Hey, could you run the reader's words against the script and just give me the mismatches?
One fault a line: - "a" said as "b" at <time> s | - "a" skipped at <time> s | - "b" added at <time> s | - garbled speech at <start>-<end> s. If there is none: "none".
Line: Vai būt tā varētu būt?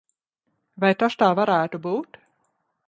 - "būt" said as "tas" at 1.0 s